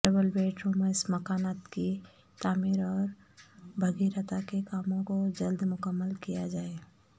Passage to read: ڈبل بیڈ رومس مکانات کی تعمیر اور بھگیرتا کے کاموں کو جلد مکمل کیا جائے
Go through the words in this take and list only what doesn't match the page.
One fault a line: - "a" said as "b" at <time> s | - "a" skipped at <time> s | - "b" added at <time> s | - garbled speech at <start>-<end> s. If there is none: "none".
none